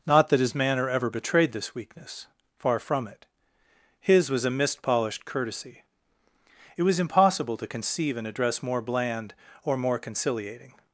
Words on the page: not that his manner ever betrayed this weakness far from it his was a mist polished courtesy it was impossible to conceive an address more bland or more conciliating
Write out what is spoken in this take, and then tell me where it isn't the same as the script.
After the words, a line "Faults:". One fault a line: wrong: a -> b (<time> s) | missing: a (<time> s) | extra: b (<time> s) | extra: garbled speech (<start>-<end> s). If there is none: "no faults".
not that his manner ever betrayed this weakness far from it his was a mist polished courtesy it was impossible to conceive an address more bland or more conciliating
Faults:
no faults